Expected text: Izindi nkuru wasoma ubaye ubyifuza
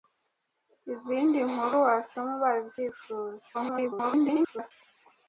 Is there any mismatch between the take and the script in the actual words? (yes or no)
yes